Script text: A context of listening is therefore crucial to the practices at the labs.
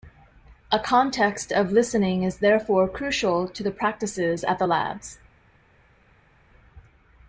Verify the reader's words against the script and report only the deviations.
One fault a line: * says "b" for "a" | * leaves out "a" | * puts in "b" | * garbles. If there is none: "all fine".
all fine